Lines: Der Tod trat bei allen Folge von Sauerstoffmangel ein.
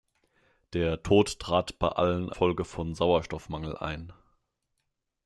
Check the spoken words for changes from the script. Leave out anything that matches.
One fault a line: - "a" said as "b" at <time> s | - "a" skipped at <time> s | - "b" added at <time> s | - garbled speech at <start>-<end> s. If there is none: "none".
none